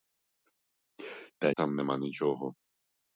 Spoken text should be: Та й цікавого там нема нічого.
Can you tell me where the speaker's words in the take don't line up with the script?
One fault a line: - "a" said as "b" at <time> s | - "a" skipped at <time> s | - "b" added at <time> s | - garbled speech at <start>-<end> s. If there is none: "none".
- "й цікавого" skipped at 1.5 s